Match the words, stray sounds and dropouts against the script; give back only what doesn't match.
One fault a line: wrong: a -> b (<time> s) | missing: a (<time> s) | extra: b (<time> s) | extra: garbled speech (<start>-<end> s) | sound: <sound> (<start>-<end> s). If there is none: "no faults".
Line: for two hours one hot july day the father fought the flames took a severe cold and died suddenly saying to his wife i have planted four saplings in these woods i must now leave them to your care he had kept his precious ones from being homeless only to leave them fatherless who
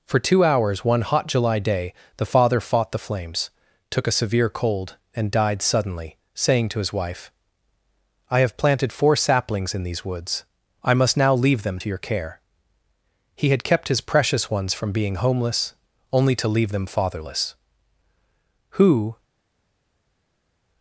no faults